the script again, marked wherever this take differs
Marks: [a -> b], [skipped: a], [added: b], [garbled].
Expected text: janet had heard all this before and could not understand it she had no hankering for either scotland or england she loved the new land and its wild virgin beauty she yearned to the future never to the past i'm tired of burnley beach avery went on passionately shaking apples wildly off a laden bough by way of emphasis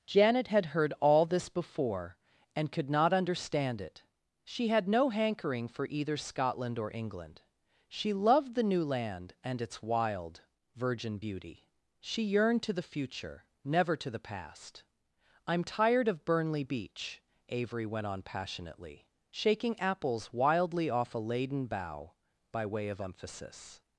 janet had heard all this before and could not understand it she had no hankering for either scotland or england she loved the new land and its wild virgin beauty she yearned to the future never to the past i'm tired of burnley beach avery went on passionately shaking apples wildly off a laden bough by way of emphasis